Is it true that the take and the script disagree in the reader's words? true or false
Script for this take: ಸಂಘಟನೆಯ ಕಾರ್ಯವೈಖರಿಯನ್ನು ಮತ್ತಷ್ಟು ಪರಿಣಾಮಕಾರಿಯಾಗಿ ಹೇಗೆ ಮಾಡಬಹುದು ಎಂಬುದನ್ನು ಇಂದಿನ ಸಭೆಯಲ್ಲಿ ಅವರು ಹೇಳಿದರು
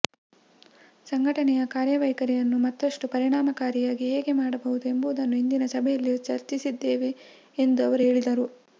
true